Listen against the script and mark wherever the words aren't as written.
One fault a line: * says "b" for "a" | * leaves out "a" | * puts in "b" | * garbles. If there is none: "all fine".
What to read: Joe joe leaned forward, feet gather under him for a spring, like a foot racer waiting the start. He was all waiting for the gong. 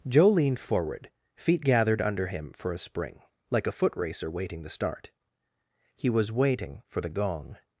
* leaves out "joe"
* says "gathered" for "gather"
* leaves out "all"